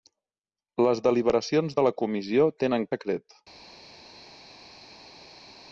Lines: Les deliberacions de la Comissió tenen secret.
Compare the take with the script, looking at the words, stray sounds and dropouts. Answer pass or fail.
pass